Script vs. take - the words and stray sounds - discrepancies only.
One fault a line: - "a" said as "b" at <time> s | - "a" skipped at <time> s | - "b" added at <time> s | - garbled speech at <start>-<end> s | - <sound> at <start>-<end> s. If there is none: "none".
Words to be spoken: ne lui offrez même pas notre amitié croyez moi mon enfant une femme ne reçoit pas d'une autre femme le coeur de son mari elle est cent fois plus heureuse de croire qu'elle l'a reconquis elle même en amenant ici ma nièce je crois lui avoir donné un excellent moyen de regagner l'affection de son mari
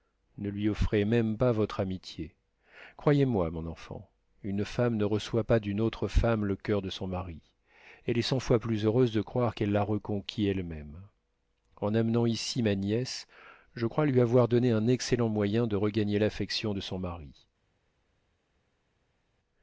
- "notre" said as "votre" at 1.5 s